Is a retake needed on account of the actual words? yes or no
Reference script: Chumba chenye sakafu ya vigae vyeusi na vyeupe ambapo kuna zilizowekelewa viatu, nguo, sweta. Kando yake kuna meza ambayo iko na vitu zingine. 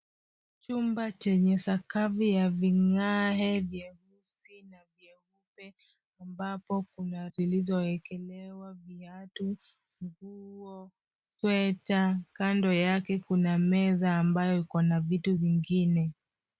no